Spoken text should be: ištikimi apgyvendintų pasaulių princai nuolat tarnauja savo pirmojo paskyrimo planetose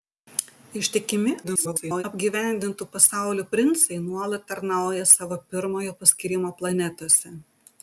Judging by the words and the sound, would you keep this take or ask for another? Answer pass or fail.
fail